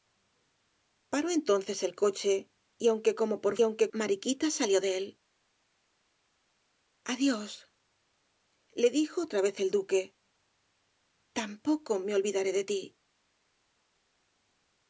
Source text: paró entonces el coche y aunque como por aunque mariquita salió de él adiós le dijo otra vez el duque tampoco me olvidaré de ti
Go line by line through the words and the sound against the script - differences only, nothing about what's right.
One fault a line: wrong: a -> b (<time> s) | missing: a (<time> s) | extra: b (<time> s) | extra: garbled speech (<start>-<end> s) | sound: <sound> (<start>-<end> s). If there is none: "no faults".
no faults